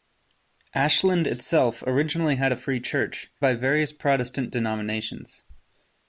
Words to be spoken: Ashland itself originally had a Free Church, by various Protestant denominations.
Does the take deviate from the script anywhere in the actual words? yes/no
no